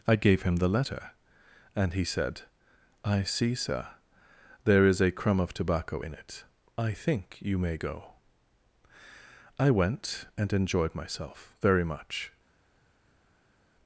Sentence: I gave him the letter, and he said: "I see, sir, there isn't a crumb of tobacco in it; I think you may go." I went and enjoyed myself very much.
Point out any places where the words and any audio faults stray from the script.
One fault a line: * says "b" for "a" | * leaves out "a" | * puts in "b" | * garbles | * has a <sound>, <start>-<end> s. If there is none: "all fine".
* says "is" for "isn't"